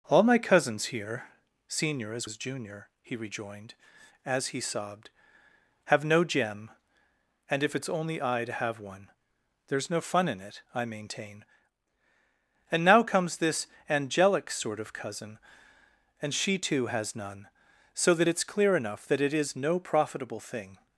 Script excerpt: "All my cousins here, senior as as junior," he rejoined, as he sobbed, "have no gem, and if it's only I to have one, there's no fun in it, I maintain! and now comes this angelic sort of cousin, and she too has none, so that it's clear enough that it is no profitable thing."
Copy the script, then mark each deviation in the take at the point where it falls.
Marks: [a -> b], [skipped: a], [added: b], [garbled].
"All my cousins here, senior as as junior," he rejoined, as he sobbed, "have no gem, and if it's only I to have one, there's no fun in it, I maintain! and now comes this angelic sort of cousin, and she too has none, so that it's clear enough that it is no profitable thing."